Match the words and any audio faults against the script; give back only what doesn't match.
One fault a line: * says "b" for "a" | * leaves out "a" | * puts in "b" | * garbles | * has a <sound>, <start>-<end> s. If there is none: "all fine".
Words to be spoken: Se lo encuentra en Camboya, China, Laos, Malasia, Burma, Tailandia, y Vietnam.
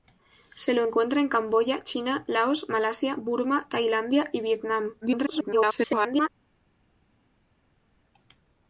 * garbles